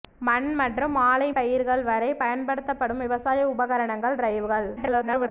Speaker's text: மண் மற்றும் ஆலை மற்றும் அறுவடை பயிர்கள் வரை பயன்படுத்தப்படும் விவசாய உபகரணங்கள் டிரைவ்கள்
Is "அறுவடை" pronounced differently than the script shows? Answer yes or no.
yes